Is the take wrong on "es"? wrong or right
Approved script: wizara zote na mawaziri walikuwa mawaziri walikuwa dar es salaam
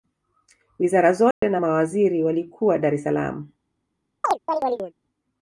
right